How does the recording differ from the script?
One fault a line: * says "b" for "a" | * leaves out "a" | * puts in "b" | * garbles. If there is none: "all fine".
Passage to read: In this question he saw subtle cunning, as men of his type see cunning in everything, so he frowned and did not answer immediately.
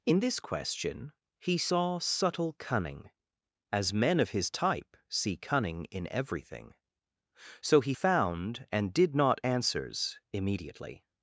* says "found" for "frowned"
* says "answers" for "answer"